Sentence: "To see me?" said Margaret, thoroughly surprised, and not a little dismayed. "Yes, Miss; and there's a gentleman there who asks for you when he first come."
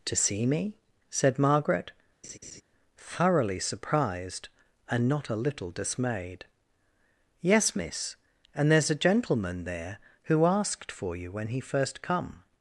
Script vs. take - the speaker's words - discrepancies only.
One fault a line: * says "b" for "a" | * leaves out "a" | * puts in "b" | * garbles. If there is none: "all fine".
* says "asked" for "asks"